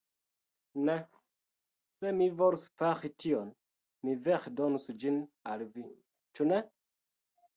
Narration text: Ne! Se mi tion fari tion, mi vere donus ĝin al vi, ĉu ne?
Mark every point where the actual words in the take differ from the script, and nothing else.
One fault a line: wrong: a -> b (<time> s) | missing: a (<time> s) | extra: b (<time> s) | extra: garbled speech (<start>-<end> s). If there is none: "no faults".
wrong: tion -> volus (2.4 s)